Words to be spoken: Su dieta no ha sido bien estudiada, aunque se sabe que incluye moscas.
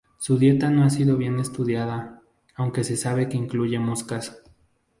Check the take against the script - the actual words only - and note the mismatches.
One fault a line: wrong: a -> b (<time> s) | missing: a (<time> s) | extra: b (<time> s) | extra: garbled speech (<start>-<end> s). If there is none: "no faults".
no faults